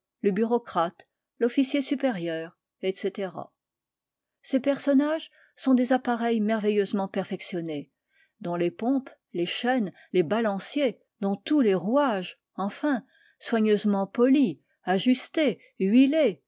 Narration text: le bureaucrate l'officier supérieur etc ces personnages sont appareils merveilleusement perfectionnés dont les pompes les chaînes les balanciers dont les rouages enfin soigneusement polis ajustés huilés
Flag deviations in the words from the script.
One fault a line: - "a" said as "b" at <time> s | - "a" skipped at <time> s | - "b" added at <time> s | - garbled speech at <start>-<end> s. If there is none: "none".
- "des" added at 5.7 s
- "tous" added at 11.4 s